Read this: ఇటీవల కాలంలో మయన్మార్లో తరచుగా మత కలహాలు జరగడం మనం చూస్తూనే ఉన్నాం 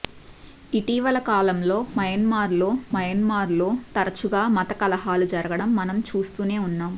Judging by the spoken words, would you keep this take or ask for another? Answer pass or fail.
fail